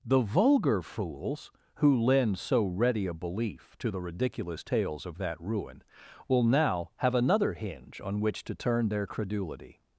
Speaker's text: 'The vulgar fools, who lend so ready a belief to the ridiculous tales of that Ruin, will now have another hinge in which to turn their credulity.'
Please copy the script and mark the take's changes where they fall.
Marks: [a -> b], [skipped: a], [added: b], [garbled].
'The vulgar fools, who lend so ready a belief to the ridiculous tales of that Ruin, will now have another hinge [in -> on] which to turn their credulity.'